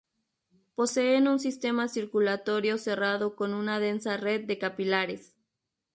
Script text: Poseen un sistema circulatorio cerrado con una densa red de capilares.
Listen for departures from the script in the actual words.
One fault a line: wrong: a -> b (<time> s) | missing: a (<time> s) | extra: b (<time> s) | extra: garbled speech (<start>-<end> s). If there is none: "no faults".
no faults